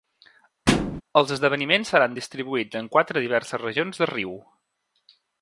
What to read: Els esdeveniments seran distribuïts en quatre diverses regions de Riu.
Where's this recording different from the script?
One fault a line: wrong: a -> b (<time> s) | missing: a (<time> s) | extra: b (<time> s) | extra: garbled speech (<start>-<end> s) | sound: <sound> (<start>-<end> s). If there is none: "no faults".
sound: thud (0.7-1.0 s)